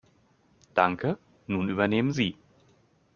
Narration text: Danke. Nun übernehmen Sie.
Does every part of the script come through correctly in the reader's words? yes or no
yes